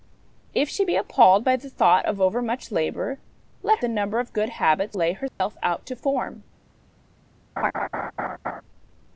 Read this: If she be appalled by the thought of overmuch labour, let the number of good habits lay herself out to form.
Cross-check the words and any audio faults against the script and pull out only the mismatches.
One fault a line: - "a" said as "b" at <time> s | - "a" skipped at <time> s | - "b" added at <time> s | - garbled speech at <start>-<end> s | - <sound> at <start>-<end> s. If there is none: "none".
- dropout at 5.3-5.4 s
- laugh at 7.6-8.6 s